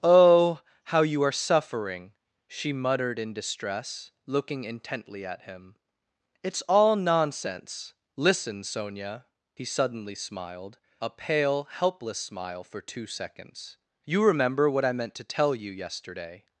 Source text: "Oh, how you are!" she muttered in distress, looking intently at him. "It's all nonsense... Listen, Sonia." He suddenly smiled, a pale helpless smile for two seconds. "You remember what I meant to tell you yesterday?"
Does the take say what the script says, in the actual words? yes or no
no